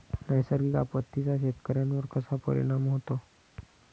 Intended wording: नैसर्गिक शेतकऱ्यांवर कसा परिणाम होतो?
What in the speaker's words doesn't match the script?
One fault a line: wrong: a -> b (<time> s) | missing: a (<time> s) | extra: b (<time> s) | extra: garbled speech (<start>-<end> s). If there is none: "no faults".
extra: आपत्तींचा (0.7 s)